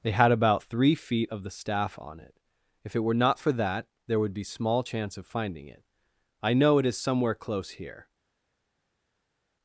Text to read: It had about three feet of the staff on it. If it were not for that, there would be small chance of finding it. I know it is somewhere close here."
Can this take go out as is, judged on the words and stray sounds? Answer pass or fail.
fail